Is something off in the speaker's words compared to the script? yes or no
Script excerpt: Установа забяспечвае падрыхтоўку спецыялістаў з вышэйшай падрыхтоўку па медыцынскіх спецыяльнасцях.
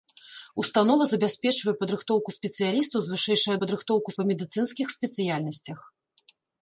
no